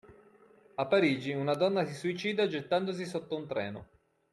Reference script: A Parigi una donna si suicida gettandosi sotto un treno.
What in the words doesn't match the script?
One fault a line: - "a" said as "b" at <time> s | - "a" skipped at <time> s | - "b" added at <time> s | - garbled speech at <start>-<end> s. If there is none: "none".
none